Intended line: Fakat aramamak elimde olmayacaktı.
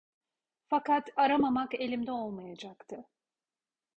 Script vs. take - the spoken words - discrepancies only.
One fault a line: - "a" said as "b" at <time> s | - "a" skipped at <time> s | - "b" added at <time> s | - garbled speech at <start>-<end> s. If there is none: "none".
none